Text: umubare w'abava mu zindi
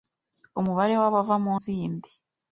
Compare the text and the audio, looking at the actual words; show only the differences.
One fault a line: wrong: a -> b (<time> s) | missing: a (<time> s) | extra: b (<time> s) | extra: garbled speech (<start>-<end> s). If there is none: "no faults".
no faults